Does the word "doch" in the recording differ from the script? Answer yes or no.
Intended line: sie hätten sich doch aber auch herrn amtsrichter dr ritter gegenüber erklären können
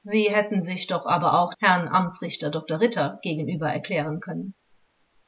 no